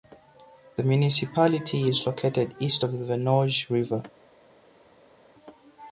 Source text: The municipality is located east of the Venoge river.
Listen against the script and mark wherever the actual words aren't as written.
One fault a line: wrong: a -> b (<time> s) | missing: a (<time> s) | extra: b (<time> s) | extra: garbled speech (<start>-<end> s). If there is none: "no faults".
no faults